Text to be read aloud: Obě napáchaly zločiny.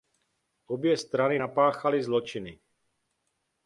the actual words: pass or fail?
fail